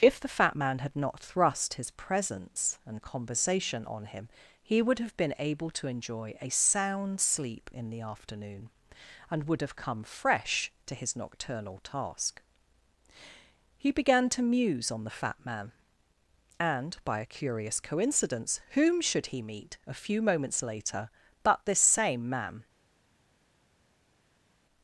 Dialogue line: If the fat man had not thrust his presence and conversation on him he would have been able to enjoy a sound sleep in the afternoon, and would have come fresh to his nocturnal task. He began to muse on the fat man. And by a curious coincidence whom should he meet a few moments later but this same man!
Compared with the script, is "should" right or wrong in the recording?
right